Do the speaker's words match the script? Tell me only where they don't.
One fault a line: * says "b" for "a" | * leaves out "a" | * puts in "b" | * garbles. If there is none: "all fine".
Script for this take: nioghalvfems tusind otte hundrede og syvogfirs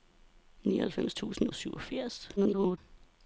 * leaves out "otte hundrede"
* garbles